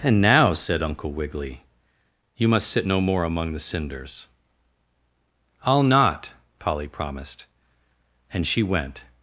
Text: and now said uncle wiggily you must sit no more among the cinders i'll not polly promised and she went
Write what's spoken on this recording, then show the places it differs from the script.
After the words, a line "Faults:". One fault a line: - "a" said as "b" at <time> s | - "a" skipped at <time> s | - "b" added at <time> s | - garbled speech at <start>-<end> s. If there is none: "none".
and now said uncle wiggily you must sit no more among the cinders i'll not polly promised and she went
Faults:
none